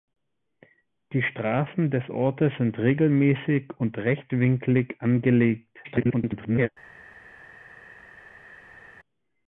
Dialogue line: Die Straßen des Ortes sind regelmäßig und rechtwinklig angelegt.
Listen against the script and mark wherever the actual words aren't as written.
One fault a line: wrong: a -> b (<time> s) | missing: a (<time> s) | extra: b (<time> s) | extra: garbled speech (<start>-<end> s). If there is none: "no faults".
extra: garbled speech (5.8-6.7 s)